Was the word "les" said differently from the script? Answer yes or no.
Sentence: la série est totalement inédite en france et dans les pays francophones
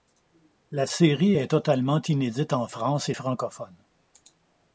yes